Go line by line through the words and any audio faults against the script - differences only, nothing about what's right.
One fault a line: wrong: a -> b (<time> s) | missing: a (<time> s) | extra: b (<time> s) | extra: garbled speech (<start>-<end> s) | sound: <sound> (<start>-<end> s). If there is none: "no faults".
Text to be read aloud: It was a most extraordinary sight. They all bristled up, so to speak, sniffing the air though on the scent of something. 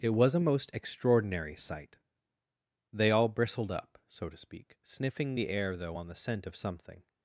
no faults